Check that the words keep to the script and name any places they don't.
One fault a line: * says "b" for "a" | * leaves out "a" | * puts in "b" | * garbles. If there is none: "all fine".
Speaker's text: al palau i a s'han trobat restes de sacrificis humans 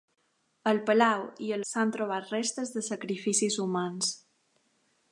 all fine